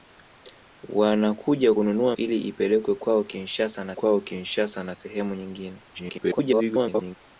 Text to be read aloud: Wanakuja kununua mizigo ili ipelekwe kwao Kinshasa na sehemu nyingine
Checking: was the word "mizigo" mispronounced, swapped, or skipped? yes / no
yes